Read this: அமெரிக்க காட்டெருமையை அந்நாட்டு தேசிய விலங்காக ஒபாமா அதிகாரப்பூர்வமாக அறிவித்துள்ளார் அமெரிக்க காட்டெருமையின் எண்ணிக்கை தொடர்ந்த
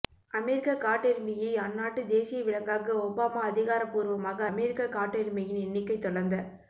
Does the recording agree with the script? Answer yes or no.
no